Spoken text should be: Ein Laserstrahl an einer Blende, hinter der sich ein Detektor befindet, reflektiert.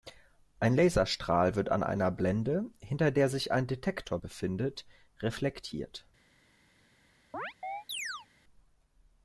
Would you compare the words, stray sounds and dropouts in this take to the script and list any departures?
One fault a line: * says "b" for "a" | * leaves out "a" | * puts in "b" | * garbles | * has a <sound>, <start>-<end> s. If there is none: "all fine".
* puts in "wird"
* has a chirp, 7.3-8.3 s